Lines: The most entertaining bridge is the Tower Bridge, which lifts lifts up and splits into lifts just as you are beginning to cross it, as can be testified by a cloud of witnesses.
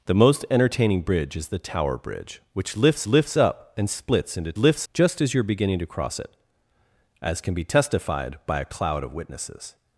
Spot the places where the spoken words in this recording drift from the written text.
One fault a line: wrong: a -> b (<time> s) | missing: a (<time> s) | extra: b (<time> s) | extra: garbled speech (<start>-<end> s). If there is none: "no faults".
no faults